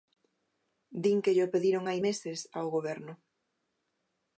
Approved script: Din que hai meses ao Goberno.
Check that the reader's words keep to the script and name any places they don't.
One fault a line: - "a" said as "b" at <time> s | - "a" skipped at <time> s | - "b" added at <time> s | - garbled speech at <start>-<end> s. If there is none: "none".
- "llo pediron" added at 1.4 s